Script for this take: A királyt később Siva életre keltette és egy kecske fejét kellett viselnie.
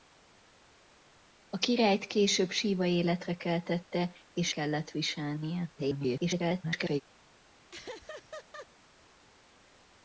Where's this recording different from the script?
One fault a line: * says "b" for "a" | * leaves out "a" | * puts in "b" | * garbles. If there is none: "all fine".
* leaves out "egy kecske fejét"
* garbles